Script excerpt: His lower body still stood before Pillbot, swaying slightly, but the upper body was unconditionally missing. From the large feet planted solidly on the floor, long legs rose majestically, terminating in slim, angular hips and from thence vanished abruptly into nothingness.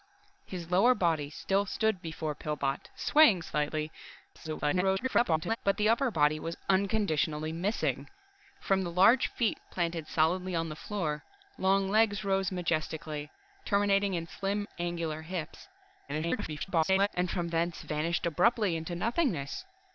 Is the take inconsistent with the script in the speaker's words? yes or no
yes